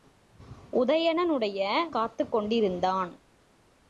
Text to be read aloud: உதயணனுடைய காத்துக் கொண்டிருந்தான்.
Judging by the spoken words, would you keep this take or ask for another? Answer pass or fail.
pass